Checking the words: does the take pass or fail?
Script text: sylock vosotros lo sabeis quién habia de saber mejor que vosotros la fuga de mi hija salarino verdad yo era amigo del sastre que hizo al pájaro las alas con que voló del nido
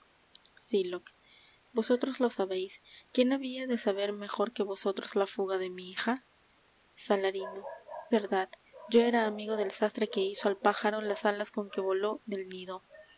pass